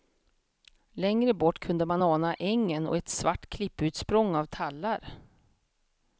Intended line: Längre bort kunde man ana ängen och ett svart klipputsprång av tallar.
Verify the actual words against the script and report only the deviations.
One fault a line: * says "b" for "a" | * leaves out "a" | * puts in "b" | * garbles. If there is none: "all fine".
all fine